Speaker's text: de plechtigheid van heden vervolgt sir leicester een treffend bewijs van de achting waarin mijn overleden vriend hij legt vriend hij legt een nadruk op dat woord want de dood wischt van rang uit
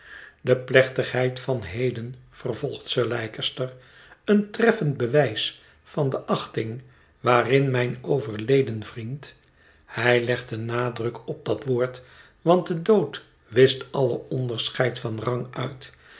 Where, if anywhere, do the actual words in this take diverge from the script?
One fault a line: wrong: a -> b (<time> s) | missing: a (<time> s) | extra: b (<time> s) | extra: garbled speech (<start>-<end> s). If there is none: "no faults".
missing: vriend hij legt (10.5 s)
extra: alle onderscheid (13.9 s)